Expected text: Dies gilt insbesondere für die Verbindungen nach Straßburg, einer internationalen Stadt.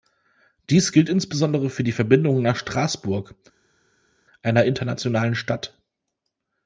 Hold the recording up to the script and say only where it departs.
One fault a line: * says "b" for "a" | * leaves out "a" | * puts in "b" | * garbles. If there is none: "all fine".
all fine